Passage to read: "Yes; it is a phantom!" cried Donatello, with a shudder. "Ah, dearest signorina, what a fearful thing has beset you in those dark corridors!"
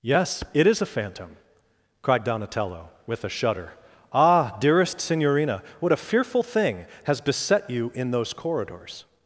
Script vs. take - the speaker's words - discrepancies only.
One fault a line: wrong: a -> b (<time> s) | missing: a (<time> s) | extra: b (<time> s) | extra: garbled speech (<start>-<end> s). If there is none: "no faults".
missing: dark (8.3 s)